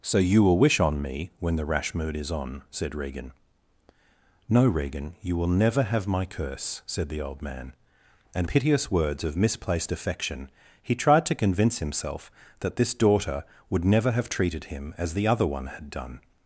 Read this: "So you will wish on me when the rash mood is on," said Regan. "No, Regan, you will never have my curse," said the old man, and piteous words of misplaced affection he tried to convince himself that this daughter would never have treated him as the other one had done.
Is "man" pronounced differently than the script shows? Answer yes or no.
no